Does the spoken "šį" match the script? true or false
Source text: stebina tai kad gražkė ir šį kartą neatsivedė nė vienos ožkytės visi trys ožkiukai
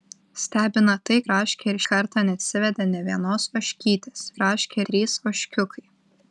false